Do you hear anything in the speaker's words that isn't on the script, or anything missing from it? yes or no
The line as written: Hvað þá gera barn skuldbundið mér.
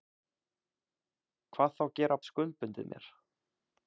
yes